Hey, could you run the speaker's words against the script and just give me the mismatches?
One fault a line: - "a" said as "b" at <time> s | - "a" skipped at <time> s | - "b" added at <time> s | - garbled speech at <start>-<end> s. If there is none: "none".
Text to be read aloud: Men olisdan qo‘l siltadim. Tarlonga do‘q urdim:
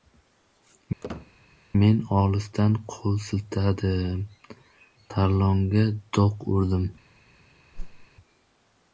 none